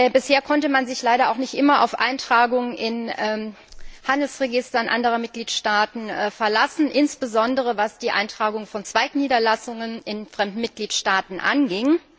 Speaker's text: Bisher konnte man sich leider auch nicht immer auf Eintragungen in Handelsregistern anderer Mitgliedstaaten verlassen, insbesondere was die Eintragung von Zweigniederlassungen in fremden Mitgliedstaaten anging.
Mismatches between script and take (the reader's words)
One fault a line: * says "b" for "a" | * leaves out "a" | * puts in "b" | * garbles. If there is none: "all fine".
all fine